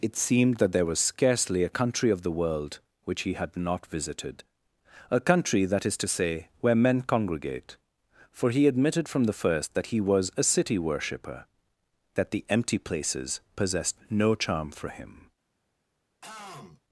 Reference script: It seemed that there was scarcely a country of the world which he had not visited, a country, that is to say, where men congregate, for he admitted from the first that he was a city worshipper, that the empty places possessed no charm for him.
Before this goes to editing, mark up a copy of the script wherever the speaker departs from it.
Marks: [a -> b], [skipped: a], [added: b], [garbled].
It seemed that there was scarcely a country of the world which he had not visited, a country, that is to say, where men congregate, for he admitted from the first that he was a city worshipper, that the empty places possessed no charm for him.